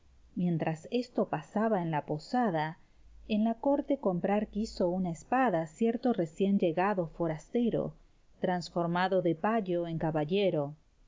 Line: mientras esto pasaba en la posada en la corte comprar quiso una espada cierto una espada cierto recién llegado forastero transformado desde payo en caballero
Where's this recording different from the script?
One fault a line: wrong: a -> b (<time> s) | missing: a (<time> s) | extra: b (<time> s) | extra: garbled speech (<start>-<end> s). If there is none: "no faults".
missing: una espada cierto (6.1 s)
wrong: desde -> de (9.2 s)